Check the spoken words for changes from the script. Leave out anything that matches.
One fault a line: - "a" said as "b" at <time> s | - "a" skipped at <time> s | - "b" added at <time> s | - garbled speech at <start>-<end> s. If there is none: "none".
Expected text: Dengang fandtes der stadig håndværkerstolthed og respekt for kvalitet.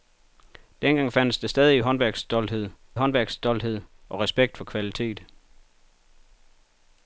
- "håndværkerstolthed" added at 2.9 s